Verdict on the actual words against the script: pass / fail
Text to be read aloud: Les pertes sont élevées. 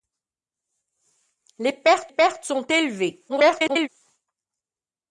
fail